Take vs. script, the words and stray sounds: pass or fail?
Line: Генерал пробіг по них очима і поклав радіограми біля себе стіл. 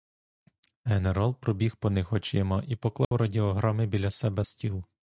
fail